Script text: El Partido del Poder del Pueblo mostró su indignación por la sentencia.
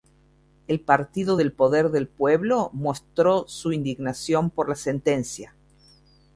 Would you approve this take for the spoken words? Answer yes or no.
yes